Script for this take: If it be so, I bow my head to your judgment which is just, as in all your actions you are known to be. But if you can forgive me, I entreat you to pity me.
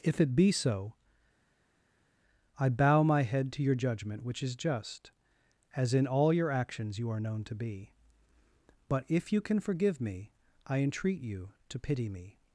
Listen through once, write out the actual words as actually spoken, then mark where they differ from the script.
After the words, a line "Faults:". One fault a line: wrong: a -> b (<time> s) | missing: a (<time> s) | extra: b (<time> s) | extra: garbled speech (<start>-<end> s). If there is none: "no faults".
If it be so, I bow my head to your judgment which is just, as in all your actions you are known to be. But if you can forgive me, I entreat you to pity me.
Faults:
no faults